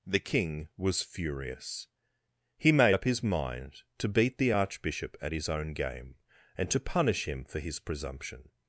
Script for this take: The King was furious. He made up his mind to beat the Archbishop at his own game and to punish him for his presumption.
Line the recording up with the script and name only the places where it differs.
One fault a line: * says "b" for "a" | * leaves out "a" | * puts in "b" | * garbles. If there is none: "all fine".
all fine